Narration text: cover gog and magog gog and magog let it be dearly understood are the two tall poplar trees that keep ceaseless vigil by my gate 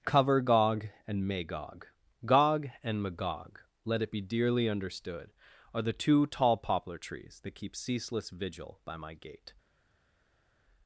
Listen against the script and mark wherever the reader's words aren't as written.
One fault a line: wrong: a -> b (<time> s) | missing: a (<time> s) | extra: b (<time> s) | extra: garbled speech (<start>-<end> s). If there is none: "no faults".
no faults